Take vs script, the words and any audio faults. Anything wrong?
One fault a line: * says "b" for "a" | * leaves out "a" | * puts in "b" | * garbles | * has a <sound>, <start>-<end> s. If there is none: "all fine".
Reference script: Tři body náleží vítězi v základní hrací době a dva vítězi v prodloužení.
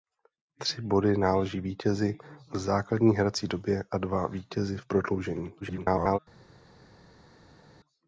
* garbles